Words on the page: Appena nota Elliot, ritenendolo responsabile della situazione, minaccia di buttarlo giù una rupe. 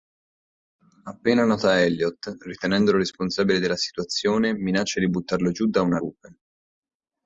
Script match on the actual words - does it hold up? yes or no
no